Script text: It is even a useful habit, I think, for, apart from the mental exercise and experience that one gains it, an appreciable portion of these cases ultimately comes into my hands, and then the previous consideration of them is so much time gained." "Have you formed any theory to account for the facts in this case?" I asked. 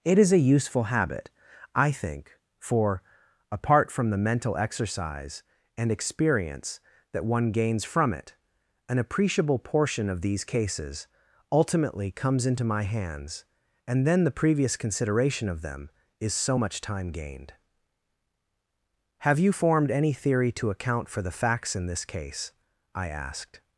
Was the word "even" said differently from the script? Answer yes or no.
yes